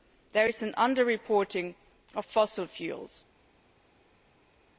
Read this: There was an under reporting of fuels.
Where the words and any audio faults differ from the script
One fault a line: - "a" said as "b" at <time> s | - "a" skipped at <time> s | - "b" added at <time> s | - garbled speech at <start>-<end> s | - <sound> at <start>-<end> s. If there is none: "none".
- "was" said as "is" at 0.5 s
- "fossil" added at 2.2 s